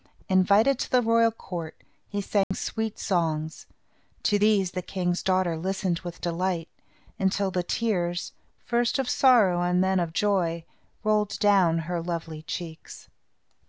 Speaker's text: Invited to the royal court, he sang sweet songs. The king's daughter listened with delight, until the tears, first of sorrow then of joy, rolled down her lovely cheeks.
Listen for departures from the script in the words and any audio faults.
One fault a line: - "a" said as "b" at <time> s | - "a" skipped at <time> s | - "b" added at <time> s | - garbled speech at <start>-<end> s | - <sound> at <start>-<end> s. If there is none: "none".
- dropout at 2.4-2.5 s
- "To these" added at 4.2 s
- "and" added at 9.6 s